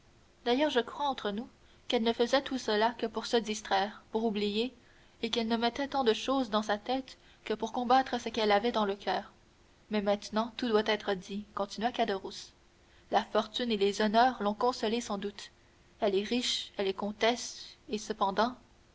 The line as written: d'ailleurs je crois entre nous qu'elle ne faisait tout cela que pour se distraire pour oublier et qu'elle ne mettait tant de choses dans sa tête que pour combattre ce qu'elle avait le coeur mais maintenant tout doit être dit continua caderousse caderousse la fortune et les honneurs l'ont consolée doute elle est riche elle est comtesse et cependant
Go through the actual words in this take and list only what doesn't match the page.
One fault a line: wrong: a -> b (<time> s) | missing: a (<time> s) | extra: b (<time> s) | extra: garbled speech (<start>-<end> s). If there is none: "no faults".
extra: dans (8.7 s)
missing: caderousse (12.5 s)
extra: sans (15.0 s)